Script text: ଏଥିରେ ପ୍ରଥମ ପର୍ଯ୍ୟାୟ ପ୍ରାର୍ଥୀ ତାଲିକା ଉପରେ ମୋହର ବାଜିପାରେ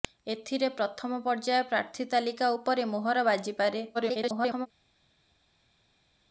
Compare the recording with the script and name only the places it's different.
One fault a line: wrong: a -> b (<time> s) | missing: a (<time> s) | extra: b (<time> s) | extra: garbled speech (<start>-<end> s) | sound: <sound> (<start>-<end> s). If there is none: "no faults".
extra: garbled speech (3.9-4.7 s)